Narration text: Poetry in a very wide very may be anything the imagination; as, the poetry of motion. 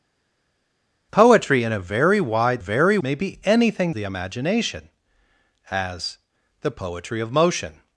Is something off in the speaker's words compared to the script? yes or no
no